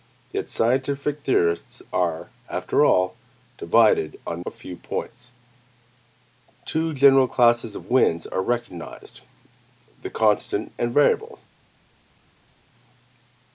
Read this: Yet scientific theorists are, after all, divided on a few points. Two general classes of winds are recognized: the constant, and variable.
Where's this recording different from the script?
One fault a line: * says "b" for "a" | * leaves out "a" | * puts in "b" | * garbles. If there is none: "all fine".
all fine